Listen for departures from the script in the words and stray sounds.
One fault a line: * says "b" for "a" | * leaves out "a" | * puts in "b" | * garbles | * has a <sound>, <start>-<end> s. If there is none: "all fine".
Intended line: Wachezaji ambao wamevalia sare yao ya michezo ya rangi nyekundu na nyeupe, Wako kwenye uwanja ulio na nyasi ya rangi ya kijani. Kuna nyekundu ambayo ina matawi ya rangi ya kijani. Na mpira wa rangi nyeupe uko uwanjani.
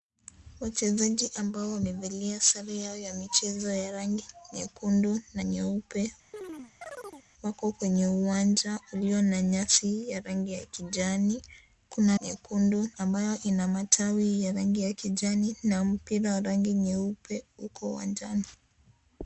* has a chirp, 6.3-7.3 s